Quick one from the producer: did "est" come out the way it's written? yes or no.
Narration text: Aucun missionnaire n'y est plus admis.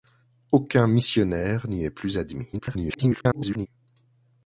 yes